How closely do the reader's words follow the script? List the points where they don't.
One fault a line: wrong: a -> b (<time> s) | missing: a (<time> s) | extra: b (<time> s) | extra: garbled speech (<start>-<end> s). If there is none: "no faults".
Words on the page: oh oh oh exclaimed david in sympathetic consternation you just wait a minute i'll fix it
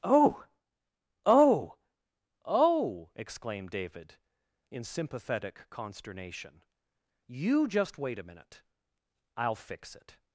no faults